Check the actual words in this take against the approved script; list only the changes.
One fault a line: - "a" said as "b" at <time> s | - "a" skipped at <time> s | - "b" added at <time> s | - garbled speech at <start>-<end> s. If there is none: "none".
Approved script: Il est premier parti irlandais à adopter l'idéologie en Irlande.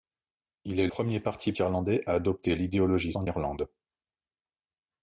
none